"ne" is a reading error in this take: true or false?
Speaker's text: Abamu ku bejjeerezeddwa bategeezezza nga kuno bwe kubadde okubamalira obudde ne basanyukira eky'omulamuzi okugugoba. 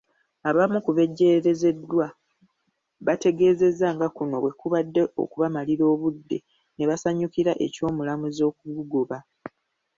false